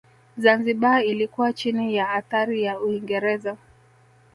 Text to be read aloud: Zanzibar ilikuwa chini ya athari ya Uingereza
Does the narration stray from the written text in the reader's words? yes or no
no